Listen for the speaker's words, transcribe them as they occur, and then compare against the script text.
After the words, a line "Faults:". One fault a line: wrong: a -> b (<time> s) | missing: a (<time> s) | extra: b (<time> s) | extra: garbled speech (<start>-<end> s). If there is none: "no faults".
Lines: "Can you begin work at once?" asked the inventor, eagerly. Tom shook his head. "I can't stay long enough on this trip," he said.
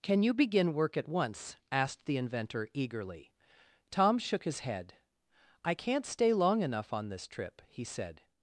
"Can you begin work at once?" asked the inventor, eagerly. Tom shook his head. "I can't stay long enough on this trip," he said.
Faults:
no faults